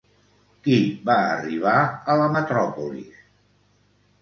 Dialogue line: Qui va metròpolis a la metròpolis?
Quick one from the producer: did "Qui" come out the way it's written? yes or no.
yes